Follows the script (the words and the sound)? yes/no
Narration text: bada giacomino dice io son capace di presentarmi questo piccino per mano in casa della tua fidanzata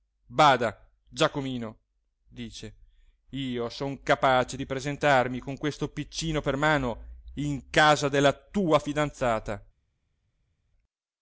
no